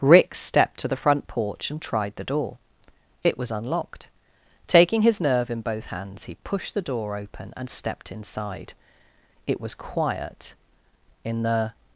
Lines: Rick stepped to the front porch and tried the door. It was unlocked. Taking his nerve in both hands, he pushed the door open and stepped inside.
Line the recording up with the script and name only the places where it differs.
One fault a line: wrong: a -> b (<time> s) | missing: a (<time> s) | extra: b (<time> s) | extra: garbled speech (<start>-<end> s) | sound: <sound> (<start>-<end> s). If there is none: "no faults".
extra: It was quiet in the (9.4 s)